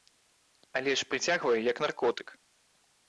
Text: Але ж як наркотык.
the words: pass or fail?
fail